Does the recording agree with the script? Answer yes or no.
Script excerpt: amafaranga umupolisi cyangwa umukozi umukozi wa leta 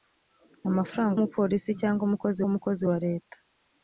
yes